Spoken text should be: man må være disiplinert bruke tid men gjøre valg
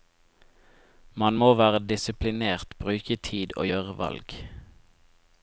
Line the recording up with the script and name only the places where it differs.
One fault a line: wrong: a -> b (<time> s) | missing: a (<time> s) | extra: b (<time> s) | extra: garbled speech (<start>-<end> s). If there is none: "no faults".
wrong: men -> og (3.6 s)